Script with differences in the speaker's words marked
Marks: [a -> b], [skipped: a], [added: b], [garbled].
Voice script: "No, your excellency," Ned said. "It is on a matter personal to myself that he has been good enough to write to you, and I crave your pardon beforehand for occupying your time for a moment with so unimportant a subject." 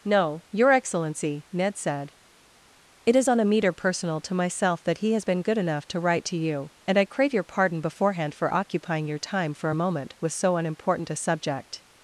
"No, your excellency," Ned said. "It is on a [matter -> meter] personal to myself that he has been good enough to write to you, and I crave your pardon beforehand for occupying your time for a moment with so unimportant a subject."